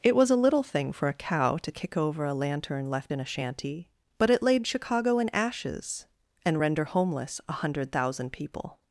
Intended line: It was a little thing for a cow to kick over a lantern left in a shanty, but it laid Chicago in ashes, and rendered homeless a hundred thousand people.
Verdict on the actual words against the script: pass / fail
fail